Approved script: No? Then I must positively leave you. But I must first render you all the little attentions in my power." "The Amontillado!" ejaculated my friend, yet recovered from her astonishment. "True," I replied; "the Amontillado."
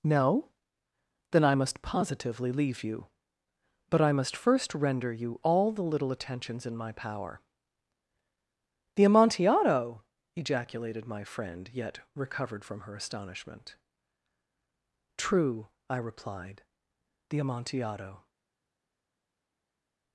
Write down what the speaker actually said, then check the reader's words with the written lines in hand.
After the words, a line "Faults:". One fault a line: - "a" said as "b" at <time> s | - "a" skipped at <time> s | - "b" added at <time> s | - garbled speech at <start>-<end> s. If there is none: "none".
No? Then I must positively leave you. But I must first render you all the little attentions in my power." "The Amontillado!" ejaculated my friend, yet recovered from her astonishment. "True," I replied; "the Amontillado."
Faults:
none